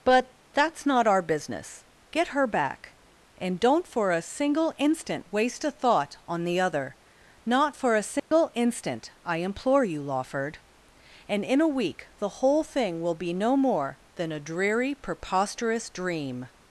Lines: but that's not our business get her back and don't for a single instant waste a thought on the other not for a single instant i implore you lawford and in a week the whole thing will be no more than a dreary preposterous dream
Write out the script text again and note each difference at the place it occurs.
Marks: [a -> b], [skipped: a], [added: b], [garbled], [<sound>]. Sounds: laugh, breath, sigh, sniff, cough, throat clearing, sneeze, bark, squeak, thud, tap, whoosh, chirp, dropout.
but that's not our business get her back and don't for a single instant waste a thought on the other not for a single [dropout] instant i implore you lawford and in a week the whole thing will be no more than a dreary preposterous dream